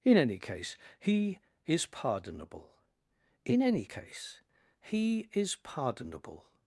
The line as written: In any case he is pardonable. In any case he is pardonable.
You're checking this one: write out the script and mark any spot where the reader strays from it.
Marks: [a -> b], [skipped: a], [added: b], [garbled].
In any case he is pardonable. In any case he is pardonable.